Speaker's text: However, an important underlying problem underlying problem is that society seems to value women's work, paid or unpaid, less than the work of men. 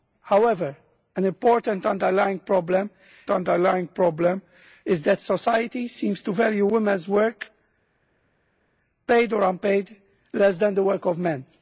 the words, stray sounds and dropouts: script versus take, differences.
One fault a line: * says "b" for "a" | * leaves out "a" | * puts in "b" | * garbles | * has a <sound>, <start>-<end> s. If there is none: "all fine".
all fine